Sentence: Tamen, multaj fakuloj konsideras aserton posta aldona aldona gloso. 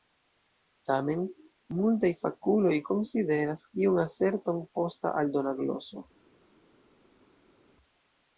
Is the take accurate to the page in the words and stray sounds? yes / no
no